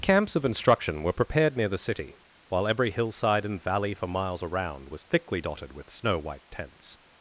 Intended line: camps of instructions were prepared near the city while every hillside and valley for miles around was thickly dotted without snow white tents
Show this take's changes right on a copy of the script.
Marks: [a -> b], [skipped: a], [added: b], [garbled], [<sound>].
camps of [instructions -> instruction] were prepared near the city while every hillside and valley for miles around was thickly dotted [without -> with] snow white tents